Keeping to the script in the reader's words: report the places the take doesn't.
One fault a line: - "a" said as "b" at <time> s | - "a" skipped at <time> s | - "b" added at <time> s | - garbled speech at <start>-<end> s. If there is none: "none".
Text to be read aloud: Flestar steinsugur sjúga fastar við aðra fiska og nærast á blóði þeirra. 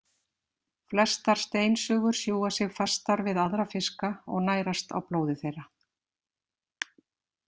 - "sig" added at 2.6 s